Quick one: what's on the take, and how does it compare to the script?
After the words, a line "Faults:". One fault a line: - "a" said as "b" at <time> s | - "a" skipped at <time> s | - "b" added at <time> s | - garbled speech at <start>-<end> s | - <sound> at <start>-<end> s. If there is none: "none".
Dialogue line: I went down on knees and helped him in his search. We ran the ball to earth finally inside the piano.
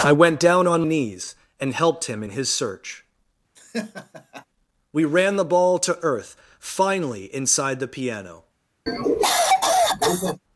I went down on knees and helped him in his search. We ran the ball to earth finally inside the piano.
Faults:
- laugh at 3.6-4.5 s
- cough at 8.9-10.4 s